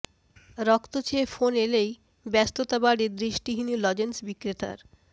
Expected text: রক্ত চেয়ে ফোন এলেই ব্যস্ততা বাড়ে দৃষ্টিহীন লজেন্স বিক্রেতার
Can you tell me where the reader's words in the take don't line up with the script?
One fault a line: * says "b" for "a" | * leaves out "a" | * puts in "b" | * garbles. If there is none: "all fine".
all fine